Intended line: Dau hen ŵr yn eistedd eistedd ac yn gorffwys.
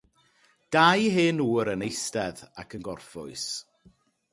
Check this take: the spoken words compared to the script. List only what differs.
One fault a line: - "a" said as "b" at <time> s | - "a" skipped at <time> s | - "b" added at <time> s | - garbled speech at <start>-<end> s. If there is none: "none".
- "eistedd" skipped at 2.4 s